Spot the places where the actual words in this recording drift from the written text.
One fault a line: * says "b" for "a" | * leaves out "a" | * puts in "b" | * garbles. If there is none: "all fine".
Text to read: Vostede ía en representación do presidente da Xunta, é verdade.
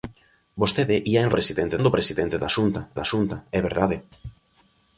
* says "presidente" for "representación"
* puts in "da Xunta"